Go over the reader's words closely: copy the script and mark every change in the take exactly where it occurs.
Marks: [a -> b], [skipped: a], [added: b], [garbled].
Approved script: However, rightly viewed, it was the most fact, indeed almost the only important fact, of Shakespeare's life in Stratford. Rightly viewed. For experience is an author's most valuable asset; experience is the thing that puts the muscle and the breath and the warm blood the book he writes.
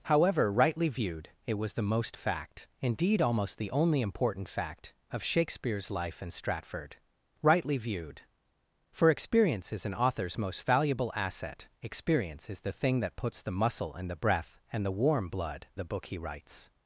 However, rightly viewed, it was the most fact, indeed almost the only important fact, of Shakespeare's life in Stratford. Rightly viewed. For experience is an author's most valuable asset; experience is the thing that puts the muscle and the breath and the warm blood the book he writes.